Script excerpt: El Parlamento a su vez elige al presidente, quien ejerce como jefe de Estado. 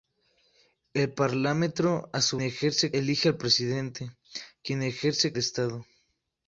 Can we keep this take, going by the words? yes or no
no